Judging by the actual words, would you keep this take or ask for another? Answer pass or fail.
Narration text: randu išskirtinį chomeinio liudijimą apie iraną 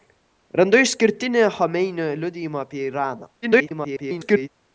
fail